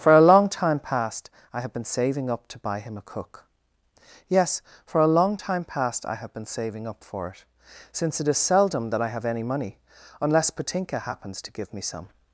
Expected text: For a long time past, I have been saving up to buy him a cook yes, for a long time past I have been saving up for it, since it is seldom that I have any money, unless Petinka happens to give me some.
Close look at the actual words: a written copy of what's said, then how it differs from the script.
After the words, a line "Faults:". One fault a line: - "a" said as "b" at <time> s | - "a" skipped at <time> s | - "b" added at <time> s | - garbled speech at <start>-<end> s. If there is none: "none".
For a long time past, I have been saving up to buy him a cook yes, for a long time past I have been saving up for it, since it is seldom that I have any money, unless Petinka happens to give me some.
Faults:
none